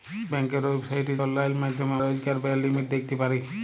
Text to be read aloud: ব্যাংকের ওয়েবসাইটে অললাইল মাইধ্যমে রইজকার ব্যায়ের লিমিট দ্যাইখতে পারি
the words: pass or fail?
pass